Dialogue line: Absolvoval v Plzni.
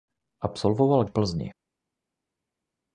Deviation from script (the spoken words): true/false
false